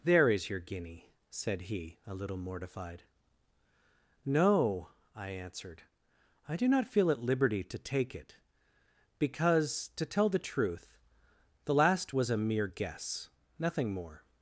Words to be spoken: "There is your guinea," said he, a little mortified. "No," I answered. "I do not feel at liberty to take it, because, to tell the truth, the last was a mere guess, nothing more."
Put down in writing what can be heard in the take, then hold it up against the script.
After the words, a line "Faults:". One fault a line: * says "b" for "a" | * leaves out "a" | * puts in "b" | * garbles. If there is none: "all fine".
"There is your guinea," said he, a little mortified. "No," I answered. "I do not feel at liberty to take it, because, to tell the truth, the last was a mere guess, nothing more."
Faults:
all fine